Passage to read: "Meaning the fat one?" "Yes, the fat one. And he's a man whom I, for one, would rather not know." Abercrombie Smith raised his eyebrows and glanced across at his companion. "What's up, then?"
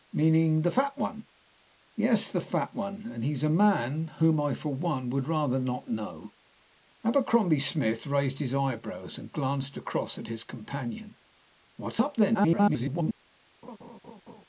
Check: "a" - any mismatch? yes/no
no